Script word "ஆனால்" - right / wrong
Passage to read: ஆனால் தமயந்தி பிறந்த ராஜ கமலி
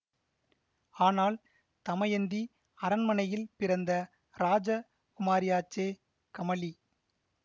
right